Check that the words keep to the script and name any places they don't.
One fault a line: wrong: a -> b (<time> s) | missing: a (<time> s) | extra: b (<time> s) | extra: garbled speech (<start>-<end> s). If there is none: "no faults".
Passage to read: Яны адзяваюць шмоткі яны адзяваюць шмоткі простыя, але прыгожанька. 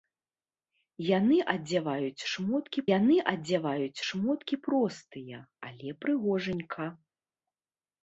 no faults